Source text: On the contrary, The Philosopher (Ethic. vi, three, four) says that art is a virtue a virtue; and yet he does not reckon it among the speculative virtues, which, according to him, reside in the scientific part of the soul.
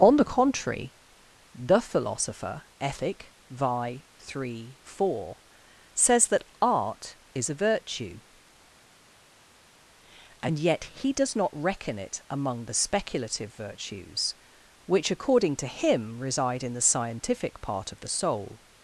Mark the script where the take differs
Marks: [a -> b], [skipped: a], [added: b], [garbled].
On the contrary, The Philosopher (Ethic. vi, three, four) says that art is a virtue [skipped: a virtue;] and yet he does not reckon it among the speculative virtues, which, according to him, reside in the scientific part of the soul.